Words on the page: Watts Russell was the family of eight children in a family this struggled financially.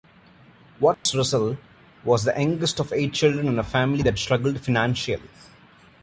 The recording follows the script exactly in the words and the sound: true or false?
false